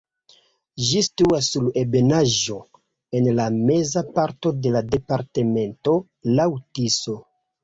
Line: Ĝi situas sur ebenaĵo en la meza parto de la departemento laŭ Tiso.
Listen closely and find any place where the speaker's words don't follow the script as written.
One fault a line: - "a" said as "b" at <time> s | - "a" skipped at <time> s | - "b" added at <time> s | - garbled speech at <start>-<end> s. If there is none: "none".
none